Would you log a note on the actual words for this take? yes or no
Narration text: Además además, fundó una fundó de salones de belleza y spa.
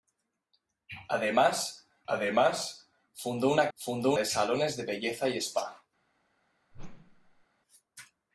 no